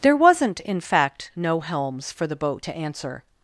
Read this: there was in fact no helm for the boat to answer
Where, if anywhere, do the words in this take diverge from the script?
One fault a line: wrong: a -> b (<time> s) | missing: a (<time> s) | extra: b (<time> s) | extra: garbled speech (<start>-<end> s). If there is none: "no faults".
wrong: was -> wasn't (0.1 s)
wrong: helm -> helms (1.6 s)